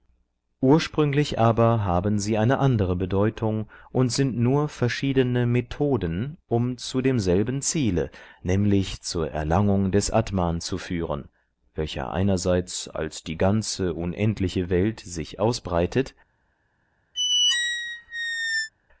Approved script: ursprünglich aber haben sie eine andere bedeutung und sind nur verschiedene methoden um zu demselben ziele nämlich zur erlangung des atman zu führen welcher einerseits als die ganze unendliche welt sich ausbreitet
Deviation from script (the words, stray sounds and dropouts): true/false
true